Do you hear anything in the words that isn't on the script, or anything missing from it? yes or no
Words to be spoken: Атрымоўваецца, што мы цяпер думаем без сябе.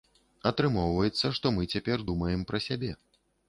yes